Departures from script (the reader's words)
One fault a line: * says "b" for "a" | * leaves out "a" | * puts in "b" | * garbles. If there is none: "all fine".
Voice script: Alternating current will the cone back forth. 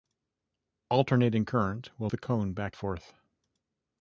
all fine